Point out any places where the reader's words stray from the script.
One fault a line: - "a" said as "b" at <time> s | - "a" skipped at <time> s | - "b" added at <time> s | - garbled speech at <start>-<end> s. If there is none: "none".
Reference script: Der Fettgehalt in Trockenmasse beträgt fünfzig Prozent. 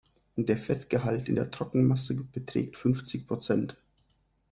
- "der" added at 1.3 s